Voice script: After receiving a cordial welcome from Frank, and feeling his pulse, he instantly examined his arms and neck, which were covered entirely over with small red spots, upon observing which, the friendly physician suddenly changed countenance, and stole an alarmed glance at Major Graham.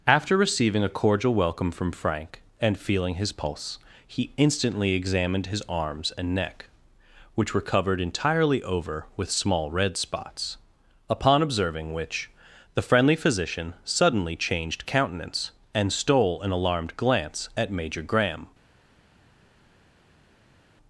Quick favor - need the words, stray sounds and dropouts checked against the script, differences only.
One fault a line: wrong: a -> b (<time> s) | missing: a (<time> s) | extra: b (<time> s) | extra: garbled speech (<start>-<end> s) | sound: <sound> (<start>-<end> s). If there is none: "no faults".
no faults